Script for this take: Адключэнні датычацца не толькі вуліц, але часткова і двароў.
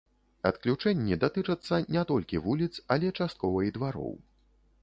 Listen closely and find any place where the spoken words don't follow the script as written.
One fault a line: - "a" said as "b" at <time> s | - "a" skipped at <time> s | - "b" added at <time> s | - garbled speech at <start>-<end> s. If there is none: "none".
none